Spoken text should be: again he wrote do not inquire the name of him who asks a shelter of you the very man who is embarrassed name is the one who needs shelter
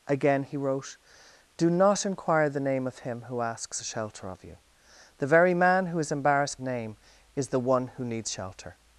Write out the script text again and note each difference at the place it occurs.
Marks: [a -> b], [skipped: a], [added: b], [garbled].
again he wrote do not inquire the name of him who asks a shelter of you the very man who is embarrassed name is the one who needs shelter